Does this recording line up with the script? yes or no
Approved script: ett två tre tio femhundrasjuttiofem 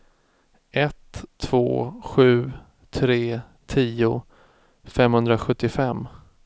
no